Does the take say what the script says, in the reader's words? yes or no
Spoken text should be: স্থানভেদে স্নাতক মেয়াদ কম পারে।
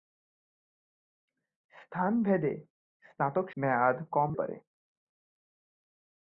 yes